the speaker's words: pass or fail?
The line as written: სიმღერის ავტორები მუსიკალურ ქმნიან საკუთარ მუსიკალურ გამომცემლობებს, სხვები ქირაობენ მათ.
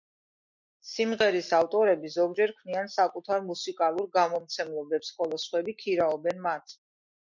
fail